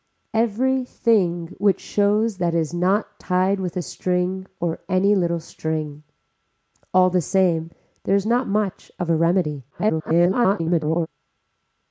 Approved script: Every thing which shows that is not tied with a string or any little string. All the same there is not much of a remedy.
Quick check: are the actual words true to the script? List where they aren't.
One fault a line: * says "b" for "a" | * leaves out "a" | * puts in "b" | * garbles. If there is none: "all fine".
* garbles